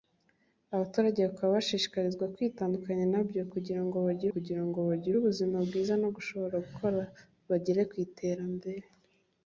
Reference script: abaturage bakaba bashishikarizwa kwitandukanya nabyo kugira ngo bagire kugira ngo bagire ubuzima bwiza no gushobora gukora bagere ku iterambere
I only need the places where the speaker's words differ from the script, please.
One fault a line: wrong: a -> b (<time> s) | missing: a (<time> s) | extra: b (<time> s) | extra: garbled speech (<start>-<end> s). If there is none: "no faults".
no faults